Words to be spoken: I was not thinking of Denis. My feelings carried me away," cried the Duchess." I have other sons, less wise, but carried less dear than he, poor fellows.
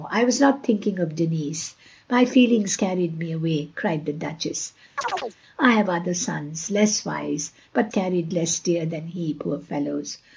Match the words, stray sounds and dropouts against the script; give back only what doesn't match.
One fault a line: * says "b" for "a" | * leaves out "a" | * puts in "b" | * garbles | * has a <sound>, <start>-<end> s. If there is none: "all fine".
* has a chirp, 5.0-5.4 s